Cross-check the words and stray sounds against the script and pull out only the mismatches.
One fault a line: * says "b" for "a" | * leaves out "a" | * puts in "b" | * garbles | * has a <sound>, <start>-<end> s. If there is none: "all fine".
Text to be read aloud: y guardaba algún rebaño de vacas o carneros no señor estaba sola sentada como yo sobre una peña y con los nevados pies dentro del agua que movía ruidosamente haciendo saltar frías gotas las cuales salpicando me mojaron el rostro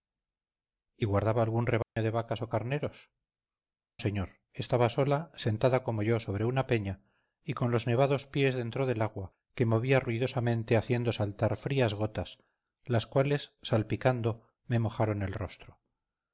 * has a dropout, 1.8-2.0 s
* leaves out "no"